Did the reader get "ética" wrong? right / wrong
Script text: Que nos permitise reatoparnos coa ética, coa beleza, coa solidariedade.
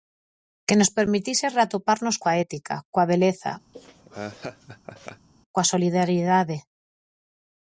right